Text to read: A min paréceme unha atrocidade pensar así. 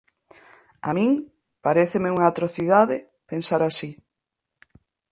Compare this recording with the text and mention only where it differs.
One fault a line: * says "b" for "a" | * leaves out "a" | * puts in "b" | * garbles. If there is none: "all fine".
all fine